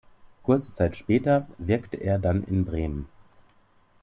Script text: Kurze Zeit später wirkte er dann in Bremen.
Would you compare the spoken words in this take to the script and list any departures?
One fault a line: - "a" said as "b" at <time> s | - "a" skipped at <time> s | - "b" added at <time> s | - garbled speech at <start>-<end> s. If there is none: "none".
none